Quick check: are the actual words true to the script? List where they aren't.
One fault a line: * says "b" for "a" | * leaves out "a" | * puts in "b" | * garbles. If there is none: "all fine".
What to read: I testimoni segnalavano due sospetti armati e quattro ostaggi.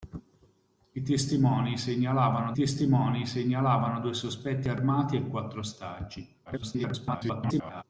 * puts in "testimoni segnalavano"
* garbles